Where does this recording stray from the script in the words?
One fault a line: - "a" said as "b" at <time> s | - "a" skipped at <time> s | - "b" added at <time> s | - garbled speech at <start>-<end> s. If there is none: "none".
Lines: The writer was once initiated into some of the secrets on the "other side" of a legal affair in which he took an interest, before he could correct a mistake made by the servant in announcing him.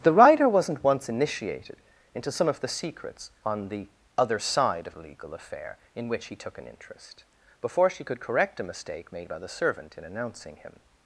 - "was" said as "wasn't" at 0.5 s
- "he" said as "she" at 7.9 s